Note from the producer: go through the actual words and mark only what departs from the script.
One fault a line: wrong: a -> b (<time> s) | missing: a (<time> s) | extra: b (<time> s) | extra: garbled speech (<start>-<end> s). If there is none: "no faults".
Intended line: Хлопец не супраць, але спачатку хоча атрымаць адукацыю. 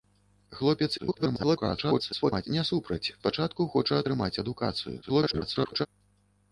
extra: garbled speech (1.0-2.5 s)
missing: але (3.1 s)
extra: garbled speech (5.0-5.9 s)